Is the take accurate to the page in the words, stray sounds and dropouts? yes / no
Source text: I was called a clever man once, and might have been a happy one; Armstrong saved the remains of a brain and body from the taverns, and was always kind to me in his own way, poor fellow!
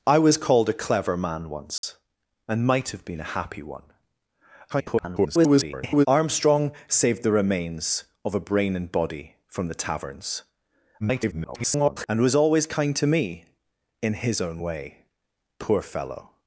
no